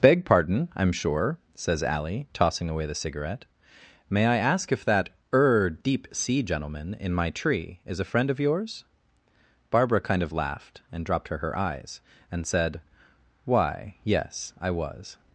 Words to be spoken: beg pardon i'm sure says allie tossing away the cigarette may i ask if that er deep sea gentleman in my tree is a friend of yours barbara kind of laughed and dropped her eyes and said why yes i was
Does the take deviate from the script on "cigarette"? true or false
false